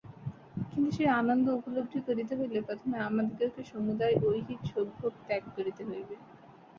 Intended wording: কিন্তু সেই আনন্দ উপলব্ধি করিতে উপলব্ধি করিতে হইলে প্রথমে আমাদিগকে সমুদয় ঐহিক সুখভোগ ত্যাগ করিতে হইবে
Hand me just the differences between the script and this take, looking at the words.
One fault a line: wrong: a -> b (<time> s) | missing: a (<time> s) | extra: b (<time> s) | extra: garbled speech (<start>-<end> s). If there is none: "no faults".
missing: উপলব্ধি করিতে (2.3 s)